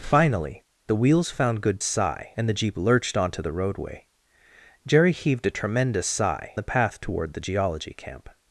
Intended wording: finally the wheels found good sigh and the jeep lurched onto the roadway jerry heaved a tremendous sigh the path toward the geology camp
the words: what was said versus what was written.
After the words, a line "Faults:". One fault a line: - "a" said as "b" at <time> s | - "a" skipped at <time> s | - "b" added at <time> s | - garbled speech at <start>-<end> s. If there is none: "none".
finally the wheels found good sigh and the jeep lurched onto the roadway jerry heaved a tremendous sigh the path toward the geology camp
Faults:
none